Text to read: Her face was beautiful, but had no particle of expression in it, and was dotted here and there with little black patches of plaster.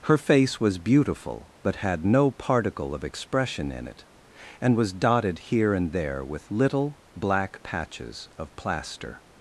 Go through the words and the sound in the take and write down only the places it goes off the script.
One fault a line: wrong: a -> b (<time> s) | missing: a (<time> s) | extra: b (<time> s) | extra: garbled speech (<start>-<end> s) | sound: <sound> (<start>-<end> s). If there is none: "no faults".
no faults